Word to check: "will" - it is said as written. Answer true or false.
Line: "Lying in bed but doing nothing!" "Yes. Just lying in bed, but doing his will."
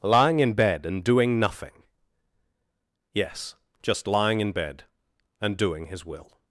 true